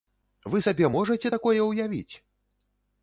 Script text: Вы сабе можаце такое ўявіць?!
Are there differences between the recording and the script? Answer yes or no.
no